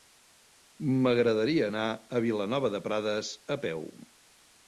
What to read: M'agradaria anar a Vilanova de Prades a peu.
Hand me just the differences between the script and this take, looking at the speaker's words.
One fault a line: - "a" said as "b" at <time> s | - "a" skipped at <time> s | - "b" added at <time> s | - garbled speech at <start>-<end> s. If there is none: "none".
none